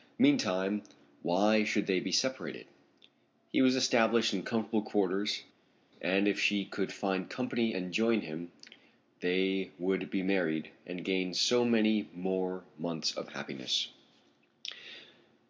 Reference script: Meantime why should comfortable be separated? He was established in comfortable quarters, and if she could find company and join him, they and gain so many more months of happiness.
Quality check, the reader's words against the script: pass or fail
fail